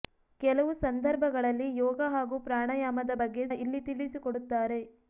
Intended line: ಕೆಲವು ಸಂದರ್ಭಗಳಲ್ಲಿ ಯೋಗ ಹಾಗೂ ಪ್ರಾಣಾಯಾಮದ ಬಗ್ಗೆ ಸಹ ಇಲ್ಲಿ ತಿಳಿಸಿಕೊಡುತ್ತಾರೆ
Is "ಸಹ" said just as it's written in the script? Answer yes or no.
no